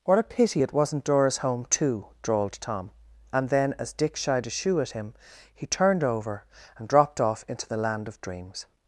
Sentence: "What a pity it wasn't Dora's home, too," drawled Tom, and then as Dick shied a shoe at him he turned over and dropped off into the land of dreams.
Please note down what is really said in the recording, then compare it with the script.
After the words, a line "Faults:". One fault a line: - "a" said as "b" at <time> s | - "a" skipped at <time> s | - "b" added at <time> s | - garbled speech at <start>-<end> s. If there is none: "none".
"What a pity it wasn't Dora's home, too," drawled Tom, and then as Dick shied a shoe at him he turned over and dropped off into the land of dreams.
Faults:
none